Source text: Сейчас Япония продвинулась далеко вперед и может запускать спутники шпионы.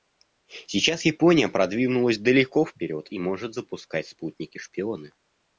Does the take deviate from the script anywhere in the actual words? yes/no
no